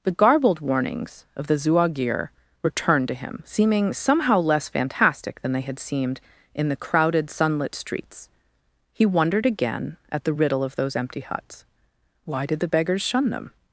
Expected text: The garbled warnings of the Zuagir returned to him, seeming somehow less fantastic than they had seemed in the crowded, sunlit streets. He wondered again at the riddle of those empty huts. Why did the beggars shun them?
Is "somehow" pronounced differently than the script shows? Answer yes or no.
no